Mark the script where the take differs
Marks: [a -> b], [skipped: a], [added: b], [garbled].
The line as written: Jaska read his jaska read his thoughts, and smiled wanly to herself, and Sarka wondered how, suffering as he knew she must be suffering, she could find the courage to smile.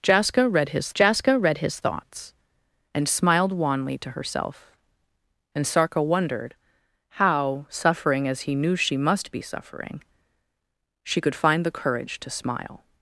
Jaska read his jaska read his thoughts, and smiled wanly to herself, and Sarka wondered how, suffering as he knew she must be suffering, she could find the courage to smile.